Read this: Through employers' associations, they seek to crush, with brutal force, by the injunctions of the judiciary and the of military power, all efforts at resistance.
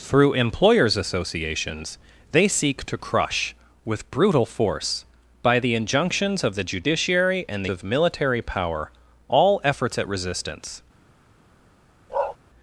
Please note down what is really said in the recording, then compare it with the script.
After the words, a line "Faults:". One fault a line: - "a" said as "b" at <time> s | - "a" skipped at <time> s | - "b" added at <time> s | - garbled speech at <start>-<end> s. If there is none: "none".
Through employers' associations, they seek to crush, with brutal force, by the injunctions of the judiciary and the of military power, all efforts at resistance.
Faults:
none